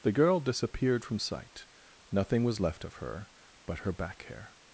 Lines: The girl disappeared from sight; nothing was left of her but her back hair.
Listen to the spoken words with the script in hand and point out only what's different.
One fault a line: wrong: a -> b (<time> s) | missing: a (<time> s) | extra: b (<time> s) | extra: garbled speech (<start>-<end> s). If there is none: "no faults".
no faults